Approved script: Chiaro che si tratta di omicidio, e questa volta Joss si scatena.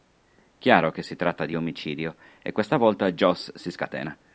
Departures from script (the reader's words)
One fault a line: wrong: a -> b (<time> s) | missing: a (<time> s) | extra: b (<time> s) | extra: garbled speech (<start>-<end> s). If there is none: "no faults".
no faults